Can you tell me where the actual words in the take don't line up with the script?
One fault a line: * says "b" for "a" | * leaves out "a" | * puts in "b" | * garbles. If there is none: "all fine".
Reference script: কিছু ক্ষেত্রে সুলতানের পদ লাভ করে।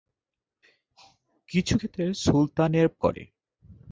* leaves out "পদ লাভ"